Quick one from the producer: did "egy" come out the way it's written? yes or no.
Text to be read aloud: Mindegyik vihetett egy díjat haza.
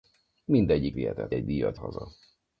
yes